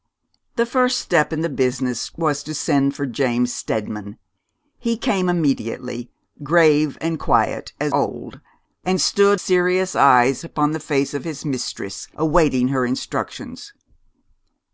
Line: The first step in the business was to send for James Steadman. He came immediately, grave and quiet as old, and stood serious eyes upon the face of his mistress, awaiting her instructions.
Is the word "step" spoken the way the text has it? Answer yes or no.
yes